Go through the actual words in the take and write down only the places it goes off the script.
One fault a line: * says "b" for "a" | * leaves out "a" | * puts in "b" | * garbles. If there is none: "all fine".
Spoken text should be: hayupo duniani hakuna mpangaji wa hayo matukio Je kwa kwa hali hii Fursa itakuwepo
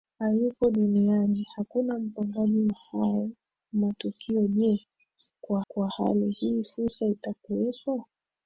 all fine